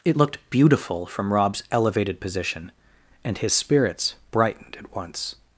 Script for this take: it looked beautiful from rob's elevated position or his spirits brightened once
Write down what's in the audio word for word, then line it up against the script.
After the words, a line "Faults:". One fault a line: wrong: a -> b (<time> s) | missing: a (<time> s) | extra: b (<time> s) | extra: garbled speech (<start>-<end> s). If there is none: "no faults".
it looked beautiful from rob's elevated position and his spirits brightened at once
Faults:
wrong: or -> and (3.2 s)
extra: at (4.8 s)